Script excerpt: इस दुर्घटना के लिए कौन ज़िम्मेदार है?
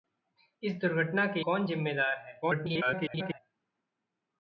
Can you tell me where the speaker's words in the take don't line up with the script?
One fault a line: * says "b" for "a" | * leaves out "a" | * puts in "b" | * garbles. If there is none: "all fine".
* leaves out "लिए"
* garbles